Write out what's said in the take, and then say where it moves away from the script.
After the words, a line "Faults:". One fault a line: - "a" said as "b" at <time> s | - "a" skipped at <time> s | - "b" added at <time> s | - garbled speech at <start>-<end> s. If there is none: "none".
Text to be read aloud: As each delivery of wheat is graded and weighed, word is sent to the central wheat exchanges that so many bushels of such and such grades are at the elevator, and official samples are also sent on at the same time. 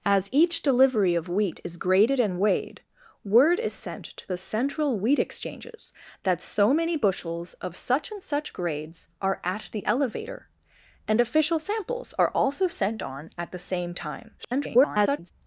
As each delivery of wheat is graded and weighed, word is sent to the central wheat exchanges that so many bushels of such and such grades are at the elevator, and official samples are also sent on at the same time. [garbled]
Faults:
- garbled speech at 14.4-15.3 s